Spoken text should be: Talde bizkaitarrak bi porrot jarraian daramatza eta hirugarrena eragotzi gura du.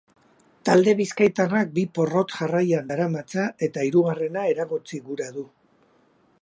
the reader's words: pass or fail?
pass